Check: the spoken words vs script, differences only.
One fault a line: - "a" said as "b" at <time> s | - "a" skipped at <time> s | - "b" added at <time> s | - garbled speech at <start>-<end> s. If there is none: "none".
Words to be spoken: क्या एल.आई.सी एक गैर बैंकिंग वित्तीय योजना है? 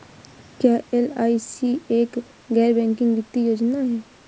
none